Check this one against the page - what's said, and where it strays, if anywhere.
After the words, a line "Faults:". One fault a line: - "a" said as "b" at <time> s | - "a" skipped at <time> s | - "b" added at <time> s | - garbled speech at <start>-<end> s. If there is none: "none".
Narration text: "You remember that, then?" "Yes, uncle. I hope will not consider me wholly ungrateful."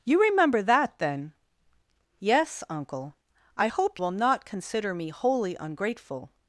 "You remember that, then?" "Yes, uncle. I hope will not consider me wholly ungrateful."
Faults:
none